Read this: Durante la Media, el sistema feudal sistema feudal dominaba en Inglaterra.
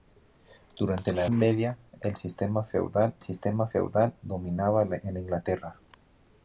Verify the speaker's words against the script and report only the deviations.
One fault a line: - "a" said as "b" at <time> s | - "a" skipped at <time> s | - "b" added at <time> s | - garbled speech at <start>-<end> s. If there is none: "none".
none